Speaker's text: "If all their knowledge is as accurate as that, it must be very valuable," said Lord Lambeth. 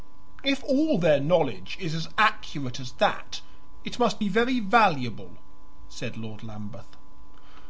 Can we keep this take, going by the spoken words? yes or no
yes